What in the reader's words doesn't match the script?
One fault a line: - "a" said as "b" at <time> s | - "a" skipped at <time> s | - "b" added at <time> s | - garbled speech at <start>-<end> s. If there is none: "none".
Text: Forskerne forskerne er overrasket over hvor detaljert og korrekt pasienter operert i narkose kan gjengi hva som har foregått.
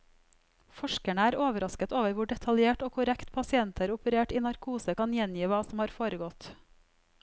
- "forskerne" skipped at 1.2 s